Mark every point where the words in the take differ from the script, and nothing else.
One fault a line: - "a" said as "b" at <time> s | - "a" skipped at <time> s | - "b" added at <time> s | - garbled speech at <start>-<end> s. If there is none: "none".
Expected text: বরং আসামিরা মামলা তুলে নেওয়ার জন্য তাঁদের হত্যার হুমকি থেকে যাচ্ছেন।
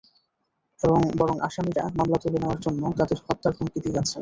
- "থেকে" said as "দিয়ে" at 3.8 s